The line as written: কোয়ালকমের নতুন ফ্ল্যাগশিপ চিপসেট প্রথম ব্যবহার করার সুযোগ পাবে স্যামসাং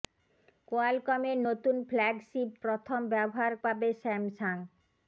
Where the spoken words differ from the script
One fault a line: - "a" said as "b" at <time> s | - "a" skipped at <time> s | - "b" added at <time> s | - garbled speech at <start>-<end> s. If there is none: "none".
- "চিপসেট" skipped at 2.5 s
- "করার সুযোগ" skipped at 3.5 s